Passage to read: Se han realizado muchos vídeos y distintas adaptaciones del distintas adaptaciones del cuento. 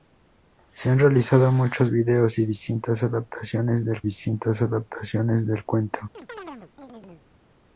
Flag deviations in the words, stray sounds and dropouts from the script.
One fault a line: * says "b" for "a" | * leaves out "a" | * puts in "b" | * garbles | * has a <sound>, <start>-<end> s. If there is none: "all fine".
* has a chirp, 6.1-7.3 s